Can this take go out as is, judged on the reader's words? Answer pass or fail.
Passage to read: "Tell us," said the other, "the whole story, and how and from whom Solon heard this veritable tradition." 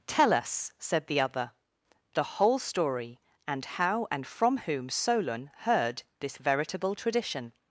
pass